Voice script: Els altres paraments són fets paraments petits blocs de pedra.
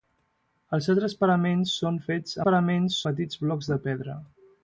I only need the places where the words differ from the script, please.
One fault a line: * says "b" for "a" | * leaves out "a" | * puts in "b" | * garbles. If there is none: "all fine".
all fine